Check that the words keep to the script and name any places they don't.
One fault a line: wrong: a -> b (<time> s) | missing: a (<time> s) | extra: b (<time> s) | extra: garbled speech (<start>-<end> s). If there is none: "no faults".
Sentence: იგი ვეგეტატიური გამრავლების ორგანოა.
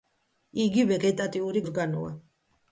missing: გამრავლების (1.6 s)